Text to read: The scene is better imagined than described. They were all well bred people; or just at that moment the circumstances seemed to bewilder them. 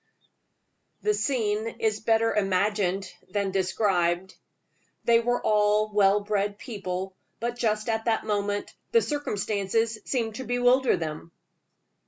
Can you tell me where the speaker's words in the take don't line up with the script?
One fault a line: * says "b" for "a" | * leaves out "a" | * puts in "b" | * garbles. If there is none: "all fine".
* says "but" for "or"